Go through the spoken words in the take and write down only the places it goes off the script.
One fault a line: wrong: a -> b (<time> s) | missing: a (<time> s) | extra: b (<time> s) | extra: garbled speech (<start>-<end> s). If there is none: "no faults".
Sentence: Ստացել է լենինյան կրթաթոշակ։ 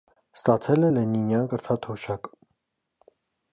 no faults